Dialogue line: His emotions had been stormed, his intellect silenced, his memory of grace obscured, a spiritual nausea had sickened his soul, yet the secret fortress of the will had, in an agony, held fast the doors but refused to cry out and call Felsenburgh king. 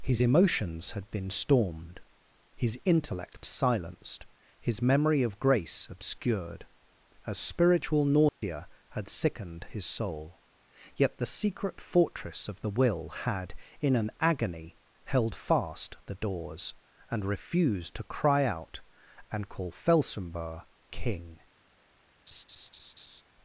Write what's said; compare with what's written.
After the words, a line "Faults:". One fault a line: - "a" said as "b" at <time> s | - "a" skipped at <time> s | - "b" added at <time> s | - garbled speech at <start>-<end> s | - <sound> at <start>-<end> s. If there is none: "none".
His emotions had been stormed, his intellect silenced, his memory of grace obscured, a spiritual nausea had sickened his soul, yet the secret fortress of the will had, in an agony, held fast the doors and refused to cry out and call Felsenburgh king.
Faults:
- dropout at 8.3-8.4 s
- "but" said as "and" at 17.1 s
- laugh at 22.3-23.2 s